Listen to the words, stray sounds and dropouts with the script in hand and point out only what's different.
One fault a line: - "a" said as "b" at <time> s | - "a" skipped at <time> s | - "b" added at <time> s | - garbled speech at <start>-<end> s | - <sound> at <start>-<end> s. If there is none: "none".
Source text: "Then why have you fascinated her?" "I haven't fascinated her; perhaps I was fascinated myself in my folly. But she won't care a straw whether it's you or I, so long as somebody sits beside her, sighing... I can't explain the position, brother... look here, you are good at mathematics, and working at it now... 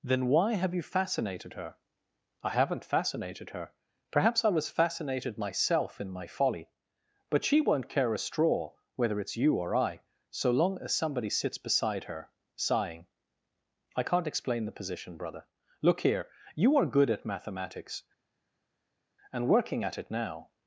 none